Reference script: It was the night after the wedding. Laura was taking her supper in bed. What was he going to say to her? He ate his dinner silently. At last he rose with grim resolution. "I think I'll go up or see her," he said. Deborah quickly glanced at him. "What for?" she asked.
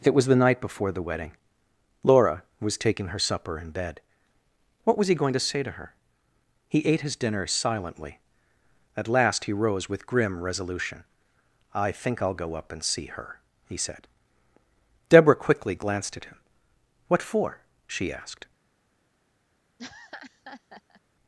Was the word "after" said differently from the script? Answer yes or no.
yes